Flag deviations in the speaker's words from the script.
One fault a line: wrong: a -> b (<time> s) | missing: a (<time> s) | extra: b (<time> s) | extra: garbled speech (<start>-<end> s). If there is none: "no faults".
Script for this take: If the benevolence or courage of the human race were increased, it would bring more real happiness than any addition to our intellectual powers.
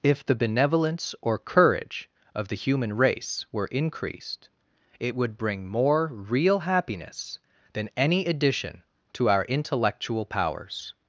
no faults